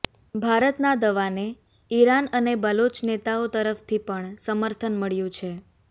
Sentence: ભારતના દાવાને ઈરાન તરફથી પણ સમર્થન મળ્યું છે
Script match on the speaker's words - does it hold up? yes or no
no